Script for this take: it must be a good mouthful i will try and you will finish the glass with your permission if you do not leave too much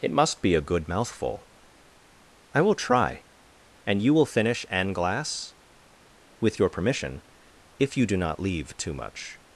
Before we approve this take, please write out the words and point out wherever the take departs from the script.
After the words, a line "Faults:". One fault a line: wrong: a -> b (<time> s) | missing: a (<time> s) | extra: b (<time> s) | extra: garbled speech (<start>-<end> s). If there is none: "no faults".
it must be a good mouthful i will try and you will finish an glass with your permission if you do not leave too much
Faults:
wrong: the -> an (4.7 s)